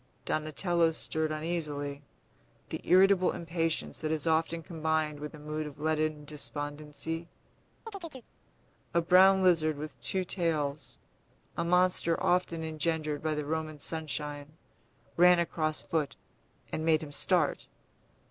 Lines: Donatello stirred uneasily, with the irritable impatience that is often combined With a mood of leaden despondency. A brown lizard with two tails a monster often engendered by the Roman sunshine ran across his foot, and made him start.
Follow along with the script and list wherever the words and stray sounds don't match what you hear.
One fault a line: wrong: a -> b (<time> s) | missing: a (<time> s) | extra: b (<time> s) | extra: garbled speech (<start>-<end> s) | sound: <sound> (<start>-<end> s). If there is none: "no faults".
missing: with (2.0 s)
sound: chirp (7.9-8.3 s)
missing: his (15.8 s)